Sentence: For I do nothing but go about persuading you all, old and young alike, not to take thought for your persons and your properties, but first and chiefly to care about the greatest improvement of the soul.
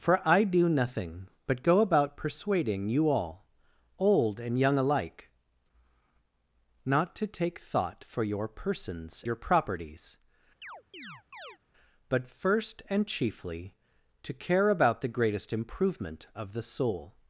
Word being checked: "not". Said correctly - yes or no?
yes